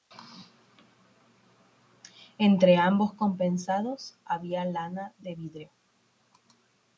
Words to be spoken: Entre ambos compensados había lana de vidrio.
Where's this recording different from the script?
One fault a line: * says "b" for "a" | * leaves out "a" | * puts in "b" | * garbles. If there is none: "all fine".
all fine